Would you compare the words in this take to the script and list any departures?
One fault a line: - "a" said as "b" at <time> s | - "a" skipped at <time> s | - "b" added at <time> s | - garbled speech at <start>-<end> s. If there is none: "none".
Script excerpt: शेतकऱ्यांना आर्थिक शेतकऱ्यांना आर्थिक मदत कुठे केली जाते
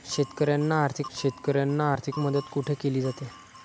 none